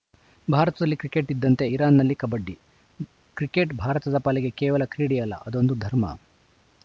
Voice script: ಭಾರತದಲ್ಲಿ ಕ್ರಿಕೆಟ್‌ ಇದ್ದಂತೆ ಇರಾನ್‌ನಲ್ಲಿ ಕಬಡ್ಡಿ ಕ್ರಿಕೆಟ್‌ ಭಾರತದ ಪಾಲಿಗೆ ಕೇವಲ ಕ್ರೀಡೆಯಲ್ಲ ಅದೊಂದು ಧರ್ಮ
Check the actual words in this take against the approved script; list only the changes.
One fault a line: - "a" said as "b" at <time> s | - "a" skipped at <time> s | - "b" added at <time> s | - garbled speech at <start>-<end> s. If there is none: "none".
none